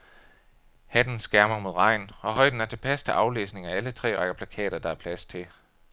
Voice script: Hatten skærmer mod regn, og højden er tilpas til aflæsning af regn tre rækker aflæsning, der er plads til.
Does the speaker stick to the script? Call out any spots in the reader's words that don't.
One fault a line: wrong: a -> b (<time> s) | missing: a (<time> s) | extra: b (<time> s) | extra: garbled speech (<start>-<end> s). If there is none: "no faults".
wrong: regn -> alle (3.8 s)
wrong: aflæsning -> plakater (4.3 s)